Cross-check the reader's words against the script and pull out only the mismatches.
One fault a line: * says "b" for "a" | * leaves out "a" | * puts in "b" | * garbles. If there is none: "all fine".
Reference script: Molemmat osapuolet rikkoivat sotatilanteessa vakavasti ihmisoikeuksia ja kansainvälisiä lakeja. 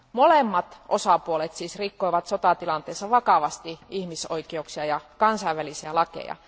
* puts in "siis"